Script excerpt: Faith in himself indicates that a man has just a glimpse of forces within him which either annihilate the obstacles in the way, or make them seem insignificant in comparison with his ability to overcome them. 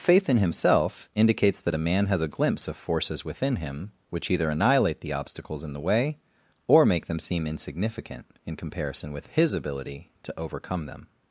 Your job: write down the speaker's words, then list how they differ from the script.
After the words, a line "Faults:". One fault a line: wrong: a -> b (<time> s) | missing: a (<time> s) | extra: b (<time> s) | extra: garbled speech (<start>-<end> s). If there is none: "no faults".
Faith in himself indicates that a man has a glimpse of forces within him which either annihilate the obstacles in the way, or make them seem insignificant in comparison with his ability to overcome them.
Faults:
missing: just (2.2 s)